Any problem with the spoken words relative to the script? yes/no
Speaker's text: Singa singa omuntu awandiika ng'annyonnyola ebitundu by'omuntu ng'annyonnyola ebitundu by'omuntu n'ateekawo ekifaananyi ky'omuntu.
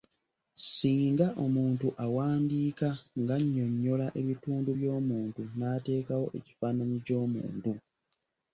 yes